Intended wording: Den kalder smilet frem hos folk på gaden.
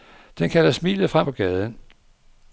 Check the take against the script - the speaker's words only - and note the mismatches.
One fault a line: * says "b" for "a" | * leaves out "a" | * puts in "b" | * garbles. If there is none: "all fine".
* leaves out "hos folk"